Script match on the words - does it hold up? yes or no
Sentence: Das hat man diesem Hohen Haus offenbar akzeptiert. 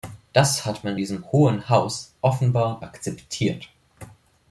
yes